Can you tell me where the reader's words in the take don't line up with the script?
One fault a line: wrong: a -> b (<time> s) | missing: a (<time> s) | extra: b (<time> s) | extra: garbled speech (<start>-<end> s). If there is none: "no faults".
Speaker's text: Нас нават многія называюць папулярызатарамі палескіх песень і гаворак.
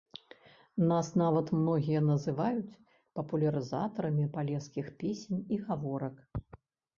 no faults